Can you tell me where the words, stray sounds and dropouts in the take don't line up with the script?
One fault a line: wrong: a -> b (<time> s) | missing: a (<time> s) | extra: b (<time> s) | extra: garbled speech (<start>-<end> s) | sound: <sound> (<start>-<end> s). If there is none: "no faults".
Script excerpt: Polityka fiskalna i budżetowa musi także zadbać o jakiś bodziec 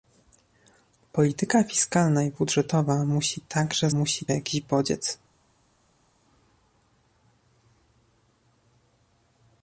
wrong: zadbać -> musi (3.9 s)